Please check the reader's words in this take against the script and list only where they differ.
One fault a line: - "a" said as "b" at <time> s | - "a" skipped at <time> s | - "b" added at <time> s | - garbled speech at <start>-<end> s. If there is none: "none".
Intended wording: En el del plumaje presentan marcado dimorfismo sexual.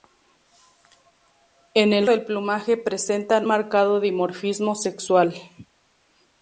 none